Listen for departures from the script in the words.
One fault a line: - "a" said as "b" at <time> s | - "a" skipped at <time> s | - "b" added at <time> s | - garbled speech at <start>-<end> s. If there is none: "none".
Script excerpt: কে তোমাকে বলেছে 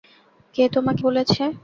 none